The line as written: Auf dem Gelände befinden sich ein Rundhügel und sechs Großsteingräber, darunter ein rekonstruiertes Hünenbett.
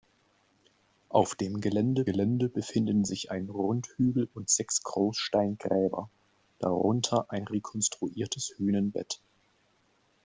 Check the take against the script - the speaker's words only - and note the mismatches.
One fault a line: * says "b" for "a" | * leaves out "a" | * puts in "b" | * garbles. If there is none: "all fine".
* puts in "Gelände"